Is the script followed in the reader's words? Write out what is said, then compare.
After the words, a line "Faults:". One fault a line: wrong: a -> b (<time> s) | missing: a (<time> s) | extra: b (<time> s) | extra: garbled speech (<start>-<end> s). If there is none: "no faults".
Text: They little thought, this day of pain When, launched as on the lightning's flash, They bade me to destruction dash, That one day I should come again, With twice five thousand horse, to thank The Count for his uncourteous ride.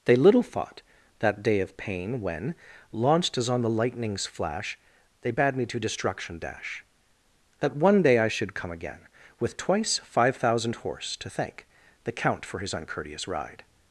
They little thought, that day of pain When, launched as on the lightning's flash, They bade me to destruction dash, That one day I should come again, With twice five thousand horse, to thank The Count for his uncourteous ride.
Faults:
wrong: this -> that (1.2 s)